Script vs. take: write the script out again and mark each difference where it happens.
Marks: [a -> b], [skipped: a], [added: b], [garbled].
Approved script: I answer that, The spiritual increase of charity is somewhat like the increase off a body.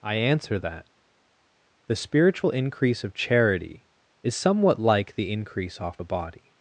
I answer that, The spiritual increase of charity is somewhat like the increase off a body.